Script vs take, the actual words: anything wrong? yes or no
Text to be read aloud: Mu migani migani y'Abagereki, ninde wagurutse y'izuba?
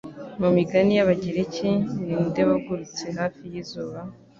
yes